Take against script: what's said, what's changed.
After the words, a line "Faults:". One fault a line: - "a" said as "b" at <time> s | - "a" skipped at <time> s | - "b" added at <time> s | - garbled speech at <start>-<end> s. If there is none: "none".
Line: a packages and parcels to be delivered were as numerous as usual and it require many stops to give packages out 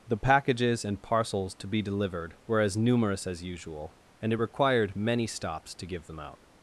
the packages and parcels to be delivered were as numerous as usual and it required many stops to give them out
Faults:
- "a" said as "the" at 0.1 s
- "require" said as "required" at 4.3 s
- "packages" said as "them" at 6.1 s